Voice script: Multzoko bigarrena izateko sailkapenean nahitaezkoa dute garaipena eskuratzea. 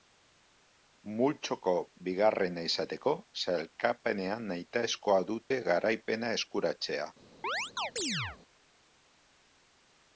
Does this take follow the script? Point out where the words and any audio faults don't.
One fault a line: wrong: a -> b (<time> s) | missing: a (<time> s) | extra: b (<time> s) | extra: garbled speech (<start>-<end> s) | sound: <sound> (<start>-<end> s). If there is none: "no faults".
sound: dropout (5.5-5.5 s)
sound: chirp (7.4-8.4 s)